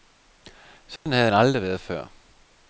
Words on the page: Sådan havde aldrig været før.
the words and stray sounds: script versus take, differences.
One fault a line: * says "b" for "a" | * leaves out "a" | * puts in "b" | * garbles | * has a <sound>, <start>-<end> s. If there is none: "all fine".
* has a dropout, 1.0-1.1 s